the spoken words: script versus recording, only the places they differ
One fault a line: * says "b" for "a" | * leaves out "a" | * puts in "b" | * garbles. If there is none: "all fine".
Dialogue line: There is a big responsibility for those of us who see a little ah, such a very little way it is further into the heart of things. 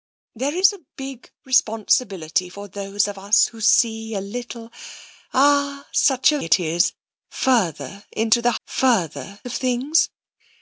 * leaves out "very little way"
* says "further" for "heart"